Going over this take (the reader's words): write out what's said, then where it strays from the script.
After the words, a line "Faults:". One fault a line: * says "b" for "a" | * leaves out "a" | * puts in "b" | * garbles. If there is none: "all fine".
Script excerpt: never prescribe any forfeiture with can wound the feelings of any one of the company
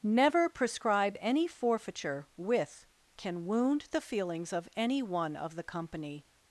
never prescribe any forfeiture with can wound the feelings of any one of the company
Faults:
all fine